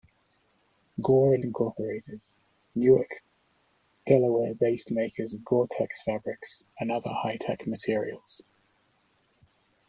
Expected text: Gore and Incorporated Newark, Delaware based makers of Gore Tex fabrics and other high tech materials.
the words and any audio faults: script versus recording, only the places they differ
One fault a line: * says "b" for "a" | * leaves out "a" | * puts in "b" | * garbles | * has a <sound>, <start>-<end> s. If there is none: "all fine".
all fine